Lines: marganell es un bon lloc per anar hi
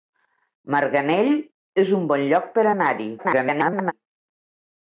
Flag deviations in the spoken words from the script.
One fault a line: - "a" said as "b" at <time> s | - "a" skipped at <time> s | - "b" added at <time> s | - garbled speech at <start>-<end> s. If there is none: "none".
- garbled speech at 3.2-3.9 s